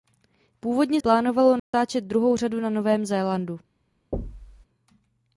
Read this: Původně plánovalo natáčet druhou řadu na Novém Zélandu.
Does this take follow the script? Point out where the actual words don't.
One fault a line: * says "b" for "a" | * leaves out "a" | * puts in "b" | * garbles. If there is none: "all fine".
all fine